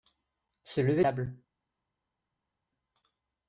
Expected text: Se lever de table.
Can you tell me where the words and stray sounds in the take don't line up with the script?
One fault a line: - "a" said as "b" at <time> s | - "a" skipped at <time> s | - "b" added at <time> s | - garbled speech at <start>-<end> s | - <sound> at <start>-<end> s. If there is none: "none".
- "de" skipped at 1.1 s